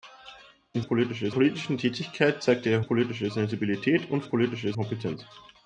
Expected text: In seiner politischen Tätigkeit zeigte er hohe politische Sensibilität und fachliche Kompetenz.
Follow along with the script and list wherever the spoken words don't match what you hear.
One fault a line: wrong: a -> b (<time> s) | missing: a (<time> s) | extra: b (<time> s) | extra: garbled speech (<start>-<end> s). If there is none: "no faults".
wrong: seiner -> politische (0.8 s)
missing: hohe (2.8 s)
wrong: fachliche -> politische (4.2 s)